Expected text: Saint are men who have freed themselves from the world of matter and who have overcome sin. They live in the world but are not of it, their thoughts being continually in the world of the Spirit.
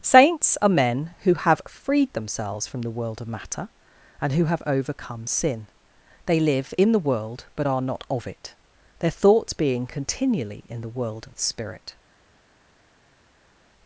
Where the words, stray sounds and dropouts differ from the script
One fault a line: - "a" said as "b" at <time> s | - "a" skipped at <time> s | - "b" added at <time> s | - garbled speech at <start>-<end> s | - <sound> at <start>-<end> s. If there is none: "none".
- "Saint" said as "Saints" at 0.0 s